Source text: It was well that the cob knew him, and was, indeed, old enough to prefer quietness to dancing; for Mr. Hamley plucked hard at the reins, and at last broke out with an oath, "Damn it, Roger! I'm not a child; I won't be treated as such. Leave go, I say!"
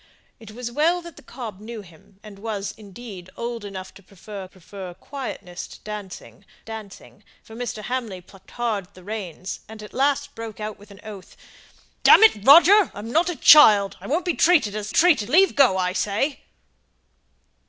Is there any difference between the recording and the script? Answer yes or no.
yes